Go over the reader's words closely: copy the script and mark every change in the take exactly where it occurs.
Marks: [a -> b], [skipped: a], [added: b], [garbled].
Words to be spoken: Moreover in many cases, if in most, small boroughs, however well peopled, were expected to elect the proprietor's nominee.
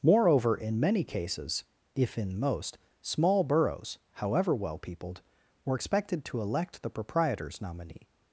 Moreover in many cases, if in most, small boroughs, however well peopled, were expected to elect the proprietor's nominee.